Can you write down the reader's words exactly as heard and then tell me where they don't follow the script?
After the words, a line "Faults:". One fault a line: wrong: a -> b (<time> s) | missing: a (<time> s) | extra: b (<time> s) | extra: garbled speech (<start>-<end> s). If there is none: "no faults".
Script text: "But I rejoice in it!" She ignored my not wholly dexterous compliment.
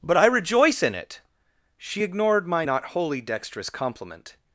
"But I rejoice in it!" She ignored my not wholly dexterous compliment.
Faults:
no faults